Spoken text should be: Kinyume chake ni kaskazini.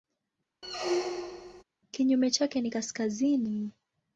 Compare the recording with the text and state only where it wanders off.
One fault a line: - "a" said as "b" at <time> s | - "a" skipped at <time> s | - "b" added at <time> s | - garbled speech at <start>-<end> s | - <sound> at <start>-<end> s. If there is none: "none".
- squeak at 0.6-1.6 s